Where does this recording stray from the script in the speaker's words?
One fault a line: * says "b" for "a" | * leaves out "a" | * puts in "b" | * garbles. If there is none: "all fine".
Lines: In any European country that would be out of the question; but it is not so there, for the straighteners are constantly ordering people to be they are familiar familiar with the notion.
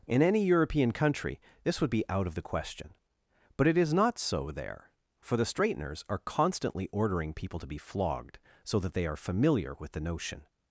* says "this" for "that"
* puts in "flogged so that"
* leaves out "familiar"